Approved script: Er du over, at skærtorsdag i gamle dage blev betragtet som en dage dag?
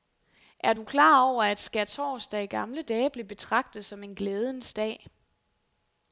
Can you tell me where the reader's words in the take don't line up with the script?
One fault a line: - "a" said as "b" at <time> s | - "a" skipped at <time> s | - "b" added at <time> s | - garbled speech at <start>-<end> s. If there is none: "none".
- "klar" added at 0.8 s
- "dage" said as "glædens" at 4.1 s